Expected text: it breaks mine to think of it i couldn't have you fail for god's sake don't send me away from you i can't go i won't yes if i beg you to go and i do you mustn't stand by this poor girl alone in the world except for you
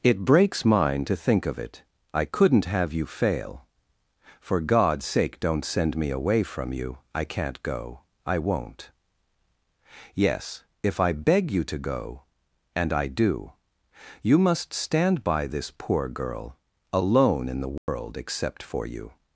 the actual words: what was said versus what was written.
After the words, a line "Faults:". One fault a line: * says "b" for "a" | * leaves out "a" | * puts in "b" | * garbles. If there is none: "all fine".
it breaks mine to think of it i couldn't have you fail for god's sake don't send me away from you i can't go i won't yes if i beg you to go and i do you must stand by this poor girl alone in the world except for you
Faults:
* says "must" for "mustn't"